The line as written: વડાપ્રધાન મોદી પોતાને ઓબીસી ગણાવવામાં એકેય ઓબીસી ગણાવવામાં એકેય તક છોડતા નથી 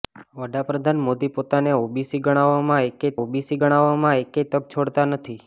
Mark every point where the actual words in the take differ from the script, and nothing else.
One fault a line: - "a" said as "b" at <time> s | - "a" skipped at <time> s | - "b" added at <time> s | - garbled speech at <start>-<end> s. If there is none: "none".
none